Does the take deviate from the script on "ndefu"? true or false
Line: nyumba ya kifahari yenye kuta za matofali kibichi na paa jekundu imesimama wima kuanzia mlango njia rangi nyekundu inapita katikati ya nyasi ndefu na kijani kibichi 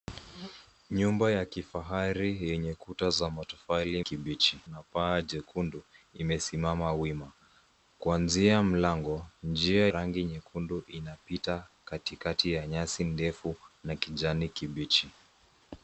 false